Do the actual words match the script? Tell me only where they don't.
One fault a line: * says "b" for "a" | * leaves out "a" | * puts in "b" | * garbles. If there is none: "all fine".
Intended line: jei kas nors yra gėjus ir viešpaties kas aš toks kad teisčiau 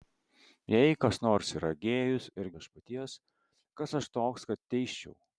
all fine